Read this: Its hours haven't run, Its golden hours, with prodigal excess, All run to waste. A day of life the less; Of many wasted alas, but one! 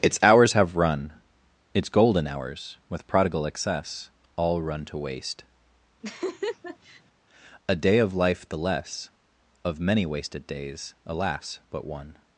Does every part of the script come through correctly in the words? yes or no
no